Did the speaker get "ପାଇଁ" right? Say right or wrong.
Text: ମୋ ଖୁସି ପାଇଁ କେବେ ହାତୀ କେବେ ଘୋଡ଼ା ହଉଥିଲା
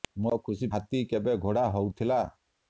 wrong